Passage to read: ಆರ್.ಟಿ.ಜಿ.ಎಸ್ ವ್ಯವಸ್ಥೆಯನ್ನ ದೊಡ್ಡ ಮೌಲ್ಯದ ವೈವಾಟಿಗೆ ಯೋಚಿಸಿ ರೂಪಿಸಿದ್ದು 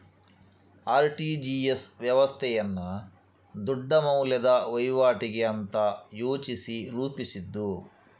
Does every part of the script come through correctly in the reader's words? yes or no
no